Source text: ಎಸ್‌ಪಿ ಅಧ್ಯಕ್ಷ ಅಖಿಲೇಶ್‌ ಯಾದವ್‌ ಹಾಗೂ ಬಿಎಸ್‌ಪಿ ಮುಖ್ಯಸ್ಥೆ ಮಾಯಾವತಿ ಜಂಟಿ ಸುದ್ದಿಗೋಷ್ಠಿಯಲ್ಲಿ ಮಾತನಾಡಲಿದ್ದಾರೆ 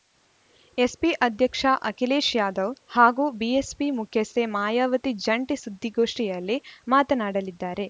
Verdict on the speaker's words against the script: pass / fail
pass